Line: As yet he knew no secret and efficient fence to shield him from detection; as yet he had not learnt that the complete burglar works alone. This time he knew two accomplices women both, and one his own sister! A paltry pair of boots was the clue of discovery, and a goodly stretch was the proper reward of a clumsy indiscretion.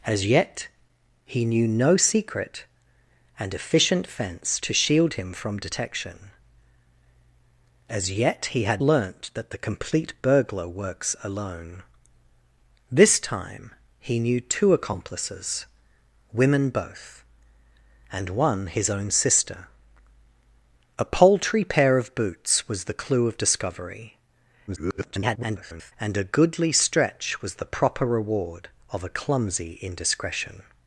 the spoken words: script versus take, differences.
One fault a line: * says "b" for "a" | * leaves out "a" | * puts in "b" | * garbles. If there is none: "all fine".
* leaves out "not"
* garbles